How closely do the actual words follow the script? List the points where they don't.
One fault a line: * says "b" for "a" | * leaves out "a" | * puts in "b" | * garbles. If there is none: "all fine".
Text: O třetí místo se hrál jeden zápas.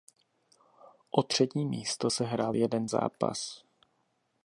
all fine